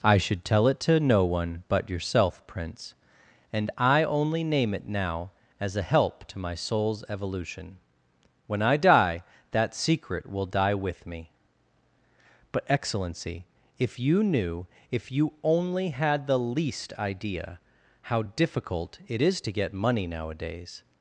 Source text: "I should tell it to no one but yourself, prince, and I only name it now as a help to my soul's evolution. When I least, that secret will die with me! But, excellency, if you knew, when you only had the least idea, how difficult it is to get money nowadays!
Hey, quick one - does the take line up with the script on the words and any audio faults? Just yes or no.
no